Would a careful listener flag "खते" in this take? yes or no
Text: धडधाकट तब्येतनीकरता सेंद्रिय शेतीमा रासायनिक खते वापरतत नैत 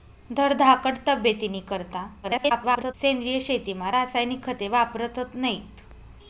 no